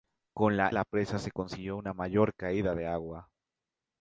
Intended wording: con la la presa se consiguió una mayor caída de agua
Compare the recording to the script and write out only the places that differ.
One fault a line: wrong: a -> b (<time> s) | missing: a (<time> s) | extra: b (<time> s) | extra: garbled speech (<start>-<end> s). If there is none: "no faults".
no faults